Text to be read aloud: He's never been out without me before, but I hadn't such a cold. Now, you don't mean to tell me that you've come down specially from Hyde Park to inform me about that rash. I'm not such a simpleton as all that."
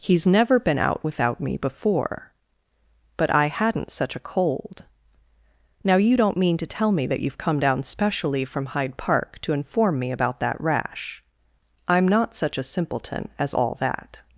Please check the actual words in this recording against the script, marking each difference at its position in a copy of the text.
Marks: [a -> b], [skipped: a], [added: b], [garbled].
He's never been out without me before, but I hadn't such a cold. Now, you don't mean to tell me that you've come down specially from Hyde Park to inform me about that rash. I'm not such a simpleton as all that."